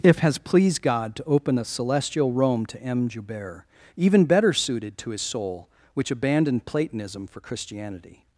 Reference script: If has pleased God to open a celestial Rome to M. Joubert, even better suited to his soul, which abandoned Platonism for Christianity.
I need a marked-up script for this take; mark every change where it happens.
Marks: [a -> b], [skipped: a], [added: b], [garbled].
If has pleased God to open a celestial Rome to M. Joubert, even better suited to his soul, which abandoned Platonism for Christianity.